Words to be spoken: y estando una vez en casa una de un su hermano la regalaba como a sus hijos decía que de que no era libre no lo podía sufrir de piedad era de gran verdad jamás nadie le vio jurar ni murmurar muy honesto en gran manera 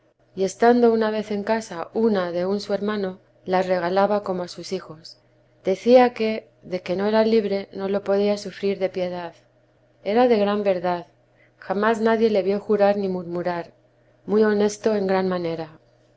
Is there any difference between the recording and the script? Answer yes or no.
no